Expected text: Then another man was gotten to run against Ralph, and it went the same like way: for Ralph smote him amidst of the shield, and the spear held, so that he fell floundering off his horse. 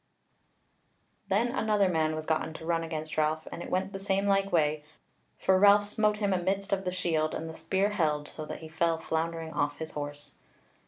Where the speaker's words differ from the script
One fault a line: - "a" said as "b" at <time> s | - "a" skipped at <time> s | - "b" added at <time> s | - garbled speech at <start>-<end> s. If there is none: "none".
none